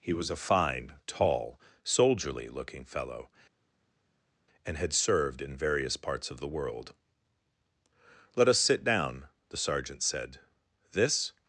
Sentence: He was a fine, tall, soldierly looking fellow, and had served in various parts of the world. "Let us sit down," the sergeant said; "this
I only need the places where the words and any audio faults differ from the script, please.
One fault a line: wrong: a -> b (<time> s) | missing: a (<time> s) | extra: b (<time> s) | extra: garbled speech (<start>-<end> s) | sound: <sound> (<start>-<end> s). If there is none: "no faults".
no faults